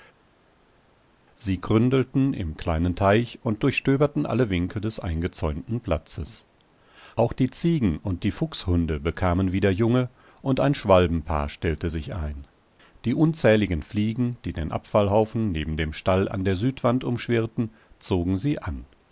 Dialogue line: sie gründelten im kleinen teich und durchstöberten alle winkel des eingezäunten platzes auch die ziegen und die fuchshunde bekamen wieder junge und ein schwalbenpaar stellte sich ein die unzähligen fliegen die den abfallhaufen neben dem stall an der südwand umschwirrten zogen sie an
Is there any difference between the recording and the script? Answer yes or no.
no